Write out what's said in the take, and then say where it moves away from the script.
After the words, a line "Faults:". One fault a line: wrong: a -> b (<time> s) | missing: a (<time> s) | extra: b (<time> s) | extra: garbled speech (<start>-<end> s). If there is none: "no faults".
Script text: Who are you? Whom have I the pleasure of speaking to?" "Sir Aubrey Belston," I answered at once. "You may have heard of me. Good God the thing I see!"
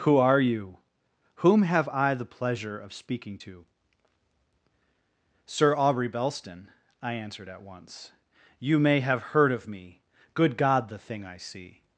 Who are you? Whom have I the pleasure of speaking to?" "Sir Aubrey Belston," I answered at once. "You may have heard of me. Good God the thing I see!"
Faults:
no faults